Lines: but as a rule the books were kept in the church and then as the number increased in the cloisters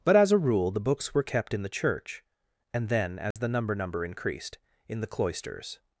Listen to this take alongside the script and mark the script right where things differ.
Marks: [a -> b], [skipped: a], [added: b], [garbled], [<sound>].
but as a rule the books were kept in the church and then as [dropout] the number [added: number] increased in the cloisters